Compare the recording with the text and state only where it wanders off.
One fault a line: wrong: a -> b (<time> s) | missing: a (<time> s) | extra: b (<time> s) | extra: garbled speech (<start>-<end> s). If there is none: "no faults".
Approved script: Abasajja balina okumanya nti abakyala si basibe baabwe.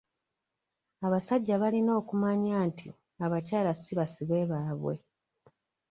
no faults